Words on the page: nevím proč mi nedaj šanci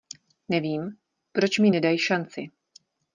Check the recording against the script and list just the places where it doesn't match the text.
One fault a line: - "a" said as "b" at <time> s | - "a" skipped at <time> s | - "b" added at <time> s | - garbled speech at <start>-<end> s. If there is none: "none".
none